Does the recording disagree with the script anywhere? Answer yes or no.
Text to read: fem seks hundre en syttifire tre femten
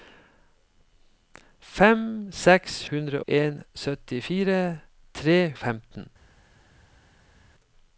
no